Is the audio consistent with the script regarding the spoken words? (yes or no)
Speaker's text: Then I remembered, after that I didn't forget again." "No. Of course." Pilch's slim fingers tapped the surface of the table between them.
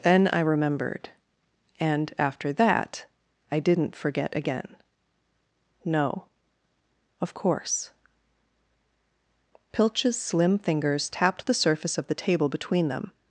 no